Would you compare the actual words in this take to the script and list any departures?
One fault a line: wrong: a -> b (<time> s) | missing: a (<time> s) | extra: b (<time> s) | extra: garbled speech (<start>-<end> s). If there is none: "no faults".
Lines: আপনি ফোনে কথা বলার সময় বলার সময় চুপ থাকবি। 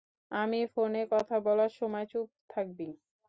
wrong: আপনি -> আমি (0.3 s)
missing: বলার সময় (2.1 s)